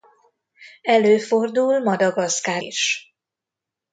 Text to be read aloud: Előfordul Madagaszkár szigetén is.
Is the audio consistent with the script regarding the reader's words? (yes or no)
no